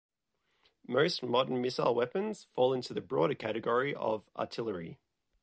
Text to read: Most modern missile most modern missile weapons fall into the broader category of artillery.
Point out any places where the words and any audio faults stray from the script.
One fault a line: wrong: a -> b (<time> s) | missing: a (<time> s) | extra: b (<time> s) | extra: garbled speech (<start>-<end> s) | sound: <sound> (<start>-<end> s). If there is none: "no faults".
missing: most modern missile (1.9 s)